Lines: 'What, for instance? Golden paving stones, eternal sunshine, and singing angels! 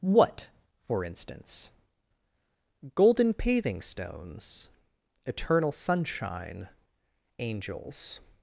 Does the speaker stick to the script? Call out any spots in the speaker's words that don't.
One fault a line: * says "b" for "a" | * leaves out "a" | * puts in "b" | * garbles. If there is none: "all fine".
* leaves out "and singing"